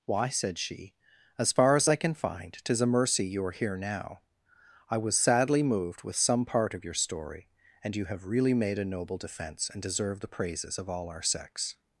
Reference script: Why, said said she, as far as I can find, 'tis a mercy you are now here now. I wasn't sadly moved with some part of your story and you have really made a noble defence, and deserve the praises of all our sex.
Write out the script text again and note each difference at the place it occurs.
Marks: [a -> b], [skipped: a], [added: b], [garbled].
Why, said [skipped: said] she, as far as I can find, 'tis a mercy you are [skipped: now] here now. I [wasn't -> was] sadly moved with some part of your story and you have really made a noble defence, and deserve the praises of all our sex.